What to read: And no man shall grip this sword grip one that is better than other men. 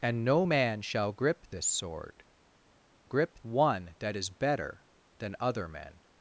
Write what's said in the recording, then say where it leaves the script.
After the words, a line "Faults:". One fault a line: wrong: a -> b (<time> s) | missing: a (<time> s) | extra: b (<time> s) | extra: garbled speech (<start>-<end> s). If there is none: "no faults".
And no man shall grip this sword grip one that is better than other men.
Faults:
no faults